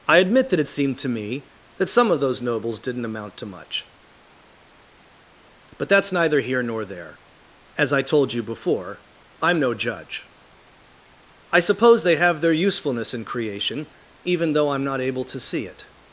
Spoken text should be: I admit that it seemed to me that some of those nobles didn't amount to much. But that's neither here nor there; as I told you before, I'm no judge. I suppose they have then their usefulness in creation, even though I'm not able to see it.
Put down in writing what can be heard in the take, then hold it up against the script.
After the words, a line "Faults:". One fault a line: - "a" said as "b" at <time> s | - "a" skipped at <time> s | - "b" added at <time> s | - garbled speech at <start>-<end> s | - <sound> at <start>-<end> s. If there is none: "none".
I admit that it seemed to me that some of those nobles didn't amount to much. But that's neither here nor there; as I told you before, I'm no judge. I suppose they have their usefulness in creation, even though I'm not able to see it.
Faults:
- "then" skipped at 12.4 s